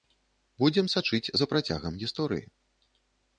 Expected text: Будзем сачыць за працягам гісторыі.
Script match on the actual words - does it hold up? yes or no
yes